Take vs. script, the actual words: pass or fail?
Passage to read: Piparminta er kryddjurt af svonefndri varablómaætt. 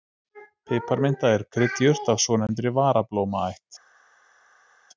pass